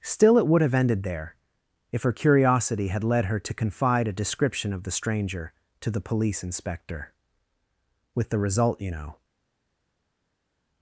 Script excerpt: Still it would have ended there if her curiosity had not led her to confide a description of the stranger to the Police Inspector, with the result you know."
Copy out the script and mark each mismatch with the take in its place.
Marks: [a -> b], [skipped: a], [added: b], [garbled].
Still it would have ended there if her curiosity had [skipped: not] led her to confide a description of the stranger to the Police Inspector, with the result you know."